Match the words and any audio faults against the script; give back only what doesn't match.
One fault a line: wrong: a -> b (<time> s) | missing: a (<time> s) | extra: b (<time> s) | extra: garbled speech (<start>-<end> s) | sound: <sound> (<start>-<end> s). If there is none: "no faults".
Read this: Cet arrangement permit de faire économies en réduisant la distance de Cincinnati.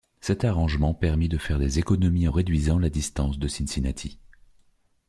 extra: des (1.6 s)